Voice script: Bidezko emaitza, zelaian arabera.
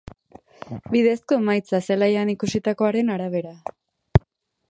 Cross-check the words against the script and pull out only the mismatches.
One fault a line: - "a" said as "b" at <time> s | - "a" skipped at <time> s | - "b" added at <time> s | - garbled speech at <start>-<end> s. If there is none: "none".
- "ikusitakoaren" added at 2.4 s